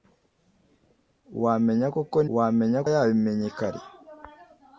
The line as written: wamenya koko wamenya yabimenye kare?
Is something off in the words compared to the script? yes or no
no